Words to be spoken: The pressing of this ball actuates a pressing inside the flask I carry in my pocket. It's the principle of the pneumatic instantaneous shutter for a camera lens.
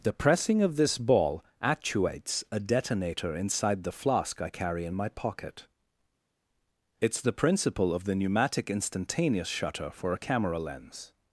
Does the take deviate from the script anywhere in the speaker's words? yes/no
yes